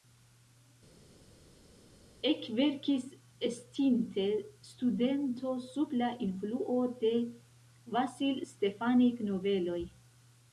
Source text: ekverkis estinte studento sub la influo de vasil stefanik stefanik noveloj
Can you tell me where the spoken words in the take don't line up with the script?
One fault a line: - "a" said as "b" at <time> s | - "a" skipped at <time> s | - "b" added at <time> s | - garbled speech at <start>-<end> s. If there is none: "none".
- "stefanik" skipped at 9.3 s